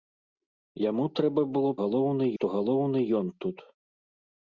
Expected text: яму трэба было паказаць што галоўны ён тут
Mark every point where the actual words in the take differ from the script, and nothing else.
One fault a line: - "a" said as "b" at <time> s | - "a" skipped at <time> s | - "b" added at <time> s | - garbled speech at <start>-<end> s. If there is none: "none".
- "паказаць" said as "галоўны" at 1.8 s